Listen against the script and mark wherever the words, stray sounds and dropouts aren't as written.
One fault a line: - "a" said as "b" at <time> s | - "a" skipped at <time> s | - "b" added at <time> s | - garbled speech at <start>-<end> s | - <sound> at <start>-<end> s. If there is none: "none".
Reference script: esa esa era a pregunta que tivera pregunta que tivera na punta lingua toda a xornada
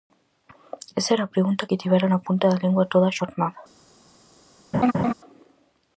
- "esa" skipped at 1.1 s
- "pregunta que tivera" skipped at 2.1 s
- "da" added at 2.5 s
- laugh at 4.7-5.1 s